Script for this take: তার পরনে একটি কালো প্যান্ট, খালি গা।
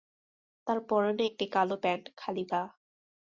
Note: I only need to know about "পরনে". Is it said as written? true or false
true